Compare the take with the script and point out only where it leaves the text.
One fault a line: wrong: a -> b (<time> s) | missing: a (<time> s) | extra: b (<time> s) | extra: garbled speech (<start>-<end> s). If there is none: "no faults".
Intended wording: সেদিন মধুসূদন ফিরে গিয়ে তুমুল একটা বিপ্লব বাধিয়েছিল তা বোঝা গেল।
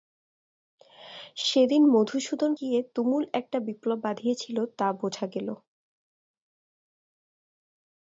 missing: ফিরে (2.5 s)